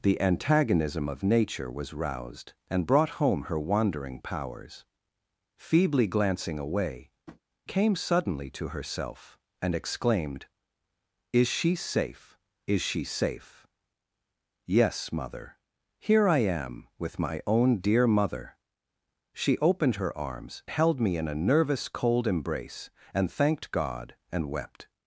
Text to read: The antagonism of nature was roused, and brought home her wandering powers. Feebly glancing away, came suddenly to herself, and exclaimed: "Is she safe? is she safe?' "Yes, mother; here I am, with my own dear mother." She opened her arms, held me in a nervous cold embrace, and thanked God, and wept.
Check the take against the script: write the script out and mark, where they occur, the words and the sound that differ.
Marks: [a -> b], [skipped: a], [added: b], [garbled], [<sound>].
The antagonism of nature was roused, and brought home her wandering powers. Feebly glancing away, [tap] came suddenly to herself, and exclaimed: "Is she safe? is she safe?' "Yes, mother; here I am, with my own dear mother." She opened her arms, held me in a nervous cold embrace, and thanked God, and wept.